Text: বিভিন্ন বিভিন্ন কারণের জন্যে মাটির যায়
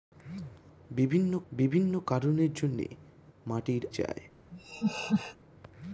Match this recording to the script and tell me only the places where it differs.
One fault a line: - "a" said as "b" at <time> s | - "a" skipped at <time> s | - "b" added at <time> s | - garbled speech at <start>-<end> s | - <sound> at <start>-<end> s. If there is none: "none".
- laugh at 4.5-5.4 s